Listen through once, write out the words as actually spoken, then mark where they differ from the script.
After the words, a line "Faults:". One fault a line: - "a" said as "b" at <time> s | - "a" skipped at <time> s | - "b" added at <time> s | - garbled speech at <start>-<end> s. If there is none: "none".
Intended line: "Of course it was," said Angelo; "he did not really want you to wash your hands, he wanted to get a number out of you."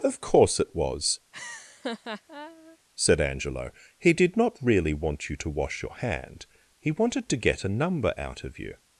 "Of course it was," said Angelo; "he did not really want you to wash your hand, he wanted to get a number out of you."
Faults:
- "hands" said as "hand" at 6.0 s